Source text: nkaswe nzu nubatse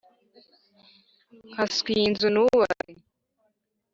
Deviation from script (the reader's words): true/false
true